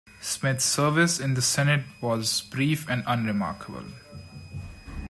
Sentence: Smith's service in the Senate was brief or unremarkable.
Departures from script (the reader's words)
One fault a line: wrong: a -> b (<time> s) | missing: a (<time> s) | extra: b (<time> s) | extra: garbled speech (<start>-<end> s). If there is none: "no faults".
wrong: or -> and (2.9 s)